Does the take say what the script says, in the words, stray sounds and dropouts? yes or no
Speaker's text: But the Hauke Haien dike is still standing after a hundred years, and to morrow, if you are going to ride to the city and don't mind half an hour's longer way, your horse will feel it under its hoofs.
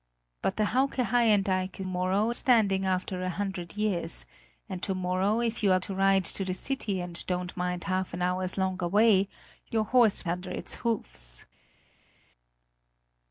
no